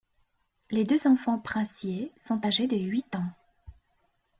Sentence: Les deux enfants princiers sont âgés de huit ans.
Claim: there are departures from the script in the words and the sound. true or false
false